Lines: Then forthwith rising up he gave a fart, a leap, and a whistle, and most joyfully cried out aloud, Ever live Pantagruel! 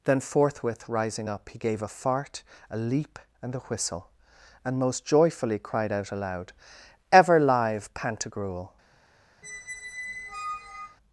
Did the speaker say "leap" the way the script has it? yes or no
yes